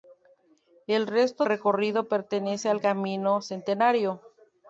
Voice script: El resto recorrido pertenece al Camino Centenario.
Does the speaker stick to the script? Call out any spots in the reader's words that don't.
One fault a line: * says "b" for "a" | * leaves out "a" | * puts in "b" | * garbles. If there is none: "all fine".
all fine